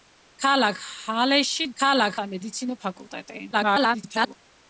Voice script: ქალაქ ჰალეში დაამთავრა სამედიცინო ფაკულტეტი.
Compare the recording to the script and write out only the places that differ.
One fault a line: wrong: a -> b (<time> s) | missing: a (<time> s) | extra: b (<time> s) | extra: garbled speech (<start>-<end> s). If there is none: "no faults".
wrong: დაამთავრა -> ქალაქ (1.8 s)
extra: garbled speech (3.5-4.4 s)